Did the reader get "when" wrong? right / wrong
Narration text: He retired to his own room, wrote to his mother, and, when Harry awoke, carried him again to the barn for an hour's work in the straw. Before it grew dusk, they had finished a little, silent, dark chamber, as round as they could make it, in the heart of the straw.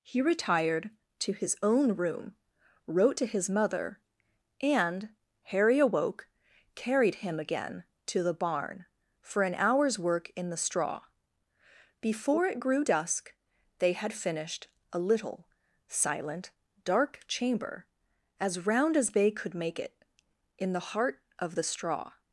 wrong